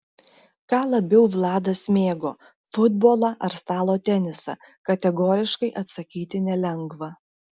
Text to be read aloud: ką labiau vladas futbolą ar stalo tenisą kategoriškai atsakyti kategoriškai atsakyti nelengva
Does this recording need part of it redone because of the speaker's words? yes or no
yes